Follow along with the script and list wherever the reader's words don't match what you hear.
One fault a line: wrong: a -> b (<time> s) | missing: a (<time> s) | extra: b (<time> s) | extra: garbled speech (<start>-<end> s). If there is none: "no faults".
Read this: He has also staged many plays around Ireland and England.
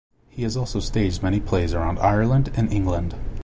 no faults